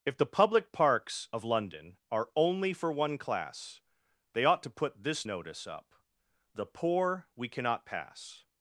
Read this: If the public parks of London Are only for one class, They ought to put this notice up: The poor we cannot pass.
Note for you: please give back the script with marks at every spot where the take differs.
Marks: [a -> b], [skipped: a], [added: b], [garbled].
If the public parks of London Are only for one class, They ought to put this notice up: The poor we cannot pass.